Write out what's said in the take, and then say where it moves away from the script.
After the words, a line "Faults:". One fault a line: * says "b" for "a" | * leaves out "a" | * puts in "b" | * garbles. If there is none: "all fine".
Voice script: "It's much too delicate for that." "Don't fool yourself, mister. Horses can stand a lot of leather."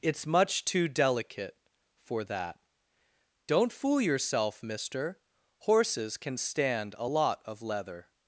"It's much too delicate for that." "Don't fool yourself, mister. Horses can stand a lot of leather."
Faults:
all fine